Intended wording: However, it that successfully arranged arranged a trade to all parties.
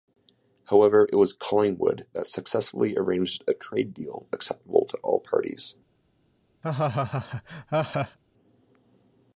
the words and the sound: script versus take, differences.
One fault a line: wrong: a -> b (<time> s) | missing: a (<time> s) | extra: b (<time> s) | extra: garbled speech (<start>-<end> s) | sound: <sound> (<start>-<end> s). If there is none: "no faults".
extra: was Collingwood (1.1 s)
missing: arranged (3.4 s)
extra: deal acceptable (3.9 s)
sound: laugh (6.6-8.2 s)